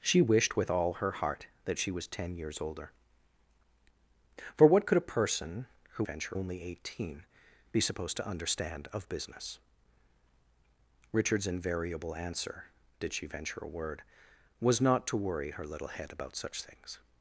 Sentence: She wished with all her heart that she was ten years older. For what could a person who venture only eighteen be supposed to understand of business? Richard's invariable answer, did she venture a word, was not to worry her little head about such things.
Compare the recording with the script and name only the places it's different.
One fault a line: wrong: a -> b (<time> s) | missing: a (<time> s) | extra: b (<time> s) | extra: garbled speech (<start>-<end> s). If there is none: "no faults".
no faults